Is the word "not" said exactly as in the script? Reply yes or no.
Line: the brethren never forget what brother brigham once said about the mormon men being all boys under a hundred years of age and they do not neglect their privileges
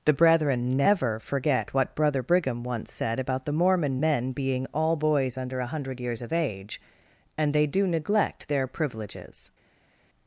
no